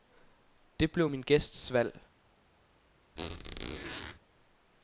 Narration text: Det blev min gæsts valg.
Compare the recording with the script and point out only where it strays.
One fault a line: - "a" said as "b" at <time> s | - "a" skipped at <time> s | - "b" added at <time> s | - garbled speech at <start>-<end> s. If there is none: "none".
none